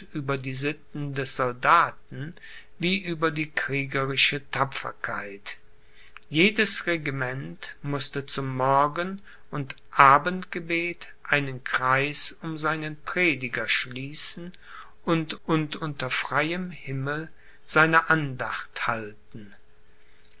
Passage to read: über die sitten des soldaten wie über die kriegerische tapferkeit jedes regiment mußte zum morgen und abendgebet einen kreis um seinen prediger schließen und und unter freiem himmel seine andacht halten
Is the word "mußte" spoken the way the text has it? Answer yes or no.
yes